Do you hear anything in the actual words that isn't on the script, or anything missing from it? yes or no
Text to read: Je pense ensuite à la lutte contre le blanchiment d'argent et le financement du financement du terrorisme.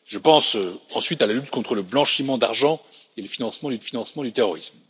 no